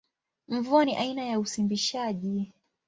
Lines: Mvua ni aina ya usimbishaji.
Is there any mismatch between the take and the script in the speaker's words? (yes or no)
no